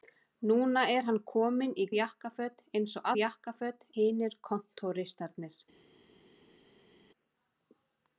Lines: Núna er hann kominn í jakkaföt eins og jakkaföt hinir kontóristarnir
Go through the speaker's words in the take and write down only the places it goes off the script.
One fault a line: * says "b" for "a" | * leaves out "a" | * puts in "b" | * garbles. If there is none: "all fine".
all fine